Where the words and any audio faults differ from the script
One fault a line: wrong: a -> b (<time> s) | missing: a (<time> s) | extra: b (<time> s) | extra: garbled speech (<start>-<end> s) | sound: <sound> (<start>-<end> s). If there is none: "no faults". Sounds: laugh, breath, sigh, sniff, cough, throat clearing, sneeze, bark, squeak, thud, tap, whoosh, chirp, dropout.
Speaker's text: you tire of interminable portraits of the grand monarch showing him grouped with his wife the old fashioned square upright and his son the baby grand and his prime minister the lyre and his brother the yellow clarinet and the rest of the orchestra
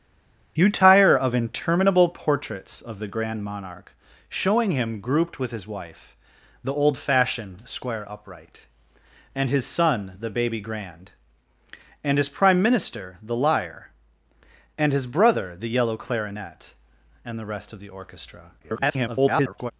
extra: garbled speech (18.6-19.7 s)